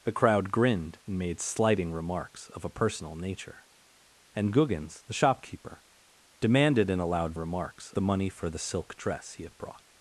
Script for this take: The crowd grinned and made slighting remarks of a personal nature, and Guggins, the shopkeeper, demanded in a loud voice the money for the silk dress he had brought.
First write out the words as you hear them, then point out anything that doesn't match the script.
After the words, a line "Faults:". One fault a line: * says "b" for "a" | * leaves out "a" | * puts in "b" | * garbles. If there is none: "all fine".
The crowd grinned and made slighting remarks of a personal nature, and Guggins, the shopkeeper, demanded in a loud remarks the money for the silk dress he had brought.
Faults:
* says "remarks" for "voice"